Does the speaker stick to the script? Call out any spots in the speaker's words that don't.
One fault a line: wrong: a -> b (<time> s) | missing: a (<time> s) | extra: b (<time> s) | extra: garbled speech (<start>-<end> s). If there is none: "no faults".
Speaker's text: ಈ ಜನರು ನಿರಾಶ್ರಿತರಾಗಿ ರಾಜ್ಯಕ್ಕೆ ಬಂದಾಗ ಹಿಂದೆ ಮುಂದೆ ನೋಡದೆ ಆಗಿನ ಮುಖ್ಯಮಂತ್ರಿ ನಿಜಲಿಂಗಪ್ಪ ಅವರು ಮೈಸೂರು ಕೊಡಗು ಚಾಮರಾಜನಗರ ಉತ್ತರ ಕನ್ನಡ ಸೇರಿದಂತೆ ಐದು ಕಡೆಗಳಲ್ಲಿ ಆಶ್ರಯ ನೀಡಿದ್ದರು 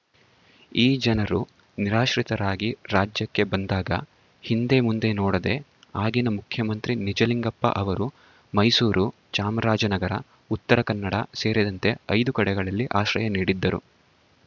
missing: ಕೊಡಗು (9.1 s)